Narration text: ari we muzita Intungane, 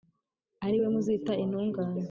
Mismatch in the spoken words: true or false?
false